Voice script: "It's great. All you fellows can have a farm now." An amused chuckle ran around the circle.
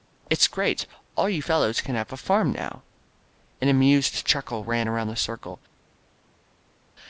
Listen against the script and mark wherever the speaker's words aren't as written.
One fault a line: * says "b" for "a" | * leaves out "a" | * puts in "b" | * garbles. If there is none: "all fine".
all fine